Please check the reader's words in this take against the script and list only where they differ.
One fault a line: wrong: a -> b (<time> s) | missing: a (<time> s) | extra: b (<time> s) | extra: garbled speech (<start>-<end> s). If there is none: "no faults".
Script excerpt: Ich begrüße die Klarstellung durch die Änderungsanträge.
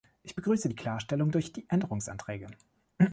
no faults